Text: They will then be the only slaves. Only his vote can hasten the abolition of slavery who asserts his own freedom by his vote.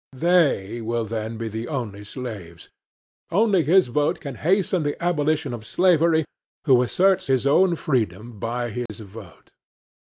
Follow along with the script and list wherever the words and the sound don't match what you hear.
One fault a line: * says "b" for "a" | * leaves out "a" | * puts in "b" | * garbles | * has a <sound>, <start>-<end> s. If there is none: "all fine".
* has a dropout, 8.9-8.9 s